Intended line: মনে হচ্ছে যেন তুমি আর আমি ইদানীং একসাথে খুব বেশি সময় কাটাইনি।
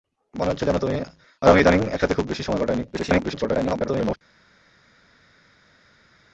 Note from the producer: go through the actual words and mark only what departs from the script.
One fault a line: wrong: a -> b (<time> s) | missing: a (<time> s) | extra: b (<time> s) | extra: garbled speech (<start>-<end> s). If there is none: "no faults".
extra: garbled speech (2.9-4.2 s)